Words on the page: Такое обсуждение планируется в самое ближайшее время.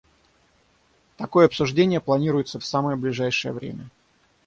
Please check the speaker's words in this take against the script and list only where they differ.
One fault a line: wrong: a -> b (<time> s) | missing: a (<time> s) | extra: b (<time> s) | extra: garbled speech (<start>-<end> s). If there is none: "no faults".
no faults